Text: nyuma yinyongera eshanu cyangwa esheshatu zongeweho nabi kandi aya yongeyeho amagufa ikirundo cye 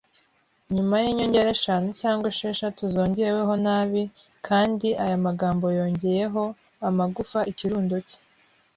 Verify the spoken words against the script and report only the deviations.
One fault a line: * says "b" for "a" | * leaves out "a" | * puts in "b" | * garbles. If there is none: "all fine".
* puts in "magambo"